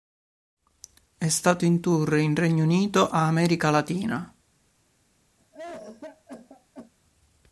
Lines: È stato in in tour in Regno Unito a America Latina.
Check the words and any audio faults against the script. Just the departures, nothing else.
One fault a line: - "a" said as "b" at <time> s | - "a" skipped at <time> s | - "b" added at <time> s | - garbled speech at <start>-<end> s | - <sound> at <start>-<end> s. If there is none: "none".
- "in" skipped at 1.8 s
- cough at 5.4-6.9 s